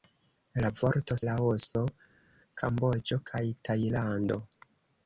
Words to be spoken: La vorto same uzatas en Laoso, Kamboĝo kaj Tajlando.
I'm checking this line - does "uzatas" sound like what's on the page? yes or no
no